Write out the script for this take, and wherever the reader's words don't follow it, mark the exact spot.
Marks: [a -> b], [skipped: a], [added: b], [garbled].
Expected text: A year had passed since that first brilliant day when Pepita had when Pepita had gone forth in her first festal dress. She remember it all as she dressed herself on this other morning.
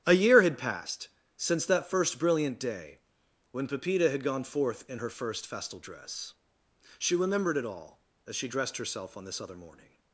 A year had passed since that first brilliant day when Pepita had [skipped: when Pepita had] gone forth in her first festal dress. She [remember -> remembered] it all as she dressed herself on this other morning.